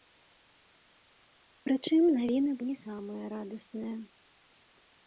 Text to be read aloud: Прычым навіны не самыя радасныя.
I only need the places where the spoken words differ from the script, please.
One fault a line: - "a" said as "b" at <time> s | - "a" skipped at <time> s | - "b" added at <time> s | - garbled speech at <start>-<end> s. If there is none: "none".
none